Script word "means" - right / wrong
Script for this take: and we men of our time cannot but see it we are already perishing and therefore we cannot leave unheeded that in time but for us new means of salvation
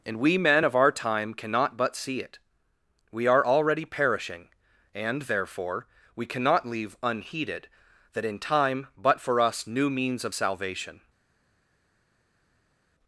right